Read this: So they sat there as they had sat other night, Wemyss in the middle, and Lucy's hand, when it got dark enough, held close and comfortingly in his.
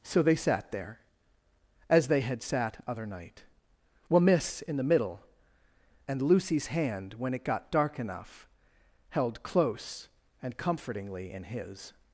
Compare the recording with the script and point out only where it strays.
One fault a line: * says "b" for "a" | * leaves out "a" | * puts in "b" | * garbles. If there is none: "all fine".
all fine